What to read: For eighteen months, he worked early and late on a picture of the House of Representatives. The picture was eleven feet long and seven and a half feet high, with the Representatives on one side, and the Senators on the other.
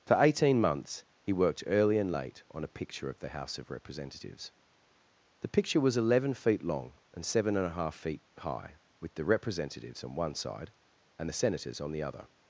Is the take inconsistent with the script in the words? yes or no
no